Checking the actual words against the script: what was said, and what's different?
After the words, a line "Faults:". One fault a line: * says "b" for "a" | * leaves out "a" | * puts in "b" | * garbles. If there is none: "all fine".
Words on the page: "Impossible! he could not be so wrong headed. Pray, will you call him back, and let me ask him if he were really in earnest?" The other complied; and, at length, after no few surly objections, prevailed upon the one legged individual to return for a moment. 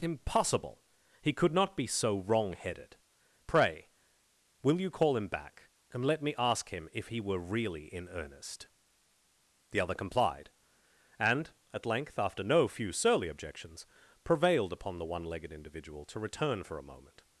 "Impossible! he could not be so wrong headed. Pray, will you call him back, and let me ask him if he were really in earnest?" The other complied; and, at length, after no few surly objections, prevailed upon the one legged individual to return for a moment.
Faults:
all fine